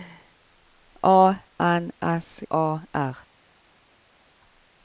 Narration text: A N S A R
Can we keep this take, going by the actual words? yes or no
yes